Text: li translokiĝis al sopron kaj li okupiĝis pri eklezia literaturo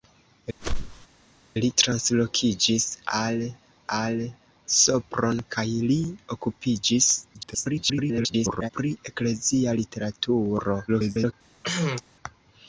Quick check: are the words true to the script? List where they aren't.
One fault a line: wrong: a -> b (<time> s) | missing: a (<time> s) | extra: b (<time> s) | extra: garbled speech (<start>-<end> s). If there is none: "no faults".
extra: al (4.0 s)
extra: garbled speech (7.3-8.7 s)
extra: garbled speech (10.9-11.3 s)